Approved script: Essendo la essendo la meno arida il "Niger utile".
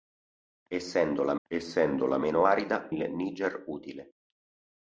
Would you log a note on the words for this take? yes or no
no